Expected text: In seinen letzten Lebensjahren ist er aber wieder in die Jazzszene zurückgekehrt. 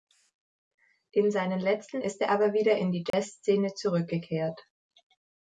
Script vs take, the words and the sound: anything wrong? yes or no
yes